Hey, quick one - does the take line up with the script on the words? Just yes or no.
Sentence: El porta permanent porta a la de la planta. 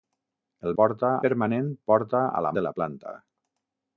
yes